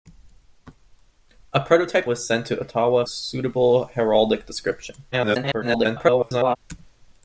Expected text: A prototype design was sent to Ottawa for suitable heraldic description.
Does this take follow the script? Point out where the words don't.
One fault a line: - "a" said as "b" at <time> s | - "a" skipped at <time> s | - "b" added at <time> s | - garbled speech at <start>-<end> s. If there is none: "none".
- "design" skipped at 2.1 s
- "for" skipped at 3.0 s
- garbled speech at 5.1-6.6 s